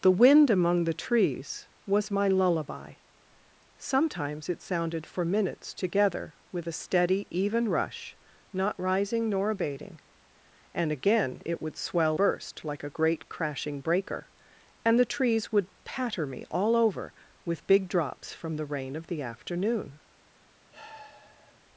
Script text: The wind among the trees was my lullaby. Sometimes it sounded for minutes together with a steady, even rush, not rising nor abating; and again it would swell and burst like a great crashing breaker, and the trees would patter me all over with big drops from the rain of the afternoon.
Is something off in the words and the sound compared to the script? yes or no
yes